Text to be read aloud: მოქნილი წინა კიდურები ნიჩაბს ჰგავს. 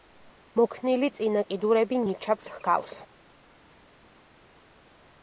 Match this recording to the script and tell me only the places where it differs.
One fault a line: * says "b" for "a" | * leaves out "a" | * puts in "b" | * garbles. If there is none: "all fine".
all fine